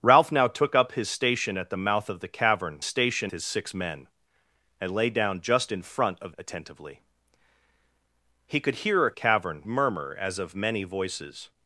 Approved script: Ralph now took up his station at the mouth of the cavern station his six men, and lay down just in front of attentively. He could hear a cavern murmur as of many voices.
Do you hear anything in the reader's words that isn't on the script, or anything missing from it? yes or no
no